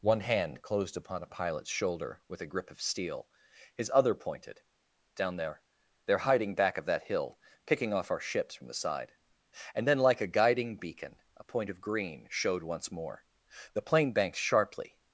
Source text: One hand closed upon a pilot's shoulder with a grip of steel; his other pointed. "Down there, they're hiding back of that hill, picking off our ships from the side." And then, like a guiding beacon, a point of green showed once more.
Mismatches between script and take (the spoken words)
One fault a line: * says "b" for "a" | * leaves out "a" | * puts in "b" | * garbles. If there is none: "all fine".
* puts in "The plane banked sharply"